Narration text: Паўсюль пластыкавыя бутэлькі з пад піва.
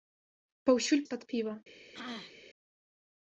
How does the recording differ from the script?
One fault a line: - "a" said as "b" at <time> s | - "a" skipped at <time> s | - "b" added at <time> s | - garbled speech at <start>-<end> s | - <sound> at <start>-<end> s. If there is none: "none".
- "пластыкавыя бутэлькі" skipped at 1.0 s
- throat clearing at 1.9-2.4 s